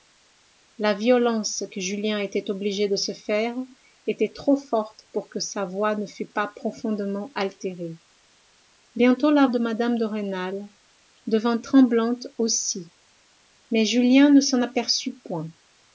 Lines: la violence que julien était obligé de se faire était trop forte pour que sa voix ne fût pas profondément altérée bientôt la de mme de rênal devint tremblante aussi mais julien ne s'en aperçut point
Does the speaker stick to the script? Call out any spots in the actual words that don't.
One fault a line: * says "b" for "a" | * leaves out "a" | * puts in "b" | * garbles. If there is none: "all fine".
all fine